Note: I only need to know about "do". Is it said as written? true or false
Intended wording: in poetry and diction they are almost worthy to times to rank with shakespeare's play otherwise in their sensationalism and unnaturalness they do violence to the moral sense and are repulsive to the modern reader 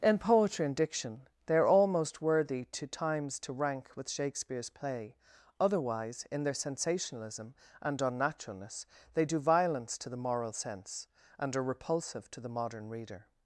true